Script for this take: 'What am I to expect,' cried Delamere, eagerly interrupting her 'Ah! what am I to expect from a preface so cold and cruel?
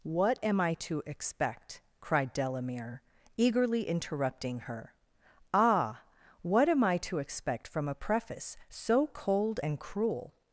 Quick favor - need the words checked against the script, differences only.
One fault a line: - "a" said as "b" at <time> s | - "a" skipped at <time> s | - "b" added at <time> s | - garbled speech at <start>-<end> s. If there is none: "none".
none